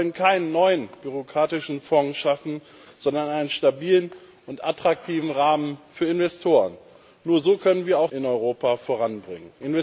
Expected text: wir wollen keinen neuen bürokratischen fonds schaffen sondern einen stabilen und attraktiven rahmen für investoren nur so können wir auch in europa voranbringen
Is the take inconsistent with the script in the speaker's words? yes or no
no